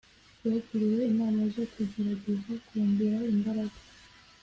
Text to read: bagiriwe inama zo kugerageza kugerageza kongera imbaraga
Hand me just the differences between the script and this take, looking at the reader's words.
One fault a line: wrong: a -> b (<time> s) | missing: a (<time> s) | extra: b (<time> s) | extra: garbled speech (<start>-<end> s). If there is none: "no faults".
missing: kugerageza (2.5 s)